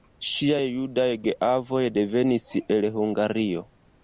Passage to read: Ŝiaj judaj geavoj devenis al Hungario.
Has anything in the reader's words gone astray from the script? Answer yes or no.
yes